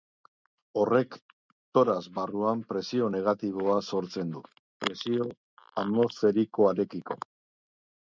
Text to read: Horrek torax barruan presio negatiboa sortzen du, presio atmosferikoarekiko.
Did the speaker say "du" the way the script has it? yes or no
yes